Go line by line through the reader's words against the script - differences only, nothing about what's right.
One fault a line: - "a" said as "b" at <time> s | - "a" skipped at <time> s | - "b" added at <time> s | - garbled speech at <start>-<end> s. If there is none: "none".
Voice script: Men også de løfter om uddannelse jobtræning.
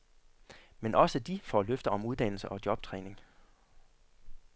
- "får" added at 1.4 s
- "og" added at 2.5 s